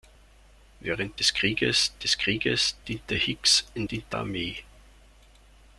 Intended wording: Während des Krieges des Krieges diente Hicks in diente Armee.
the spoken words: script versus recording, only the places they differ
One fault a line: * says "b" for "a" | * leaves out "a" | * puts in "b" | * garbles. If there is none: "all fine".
all fine